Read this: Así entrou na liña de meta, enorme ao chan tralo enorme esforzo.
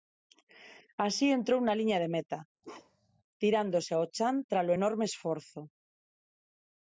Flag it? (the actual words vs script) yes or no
yes